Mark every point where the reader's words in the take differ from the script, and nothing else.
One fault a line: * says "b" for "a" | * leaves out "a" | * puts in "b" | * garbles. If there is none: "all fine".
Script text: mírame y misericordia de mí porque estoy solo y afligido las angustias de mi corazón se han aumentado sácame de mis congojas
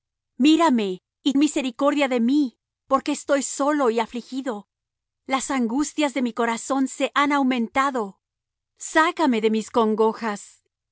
all fine